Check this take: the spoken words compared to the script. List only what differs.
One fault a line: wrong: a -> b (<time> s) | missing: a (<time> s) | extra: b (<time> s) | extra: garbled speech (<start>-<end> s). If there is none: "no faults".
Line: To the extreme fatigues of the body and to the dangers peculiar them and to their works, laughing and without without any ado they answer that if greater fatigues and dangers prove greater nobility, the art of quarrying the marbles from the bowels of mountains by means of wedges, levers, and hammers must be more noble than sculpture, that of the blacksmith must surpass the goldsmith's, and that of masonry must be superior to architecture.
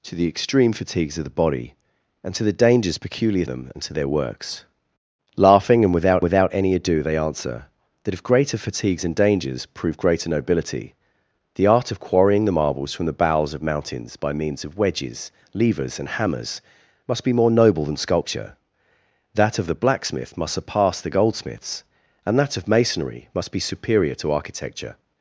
no faults